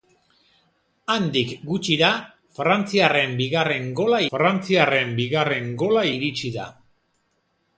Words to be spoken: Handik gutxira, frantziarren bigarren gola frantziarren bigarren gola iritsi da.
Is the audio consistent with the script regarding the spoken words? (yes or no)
yes